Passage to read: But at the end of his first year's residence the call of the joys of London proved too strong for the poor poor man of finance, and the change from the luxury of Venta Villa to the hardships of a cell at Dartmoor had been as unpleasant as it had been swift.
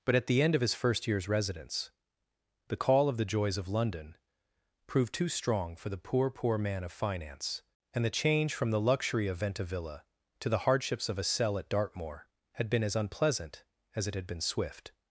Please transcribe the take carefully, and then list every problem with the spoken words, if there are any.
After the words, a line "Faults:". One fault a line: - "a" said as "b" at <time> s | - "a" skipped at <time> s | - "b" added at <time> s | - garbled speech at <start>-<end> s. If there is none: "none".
But at the end of his first year's residence the call of the joys of London proved too strong for the poor poor man of finance, and the change from the luxury of Venta Villa to the hardships of a cell at Dartmoor had been as unpleasant as it had been swift.
Faults:
none